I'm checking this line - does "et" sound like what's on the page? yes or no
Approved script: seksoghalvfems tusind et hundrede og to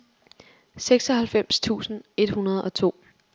yes